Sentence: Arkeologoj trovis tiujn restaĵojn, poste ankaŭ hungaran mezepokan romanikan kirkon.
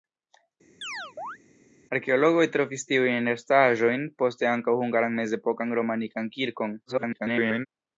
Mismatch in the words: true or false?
true